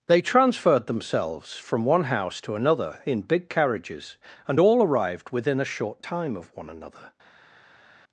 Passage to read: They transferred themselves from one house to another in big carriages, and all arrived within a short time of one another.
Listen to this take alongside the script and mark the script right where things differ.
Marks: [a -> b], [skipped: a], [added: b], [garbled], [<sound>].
They transferred themselves from one house to another in big carriages, and all arrived within a short time of one another.